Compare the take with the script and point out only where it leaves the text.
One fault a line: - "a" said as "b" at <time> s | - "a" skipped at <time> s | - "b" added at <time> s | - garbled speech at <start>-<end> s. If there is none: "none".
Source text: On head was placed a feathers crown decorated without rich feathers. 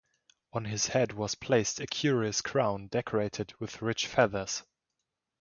- "his" added at 0.7 s
- "feathers" said as "curious" at 1.9 s
- "without" said as "with" at 3.6 s